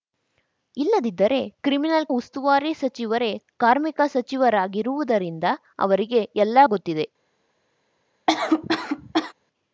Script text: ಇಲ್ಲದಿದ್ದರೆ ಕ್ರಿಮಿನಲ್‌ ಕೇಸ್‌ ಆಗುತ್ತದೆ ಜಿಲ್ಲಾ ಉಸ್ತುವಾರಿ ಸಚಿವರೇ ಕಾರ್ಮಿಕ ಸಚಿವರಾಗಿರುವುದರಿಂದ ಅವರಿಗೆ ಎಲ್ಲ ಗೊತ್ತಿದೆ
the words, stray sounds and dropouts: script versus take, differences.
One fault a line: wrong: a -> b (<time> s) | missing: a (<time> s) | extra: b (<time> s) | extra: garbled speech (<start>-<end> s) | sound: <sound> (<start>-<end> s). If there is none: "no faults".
missing: ಕೇಸ್ ಆಗುತ್ತದೆ ಜಿಲ್ಲಾ (2.1 s)
sound: cough (8.3-9.3 s)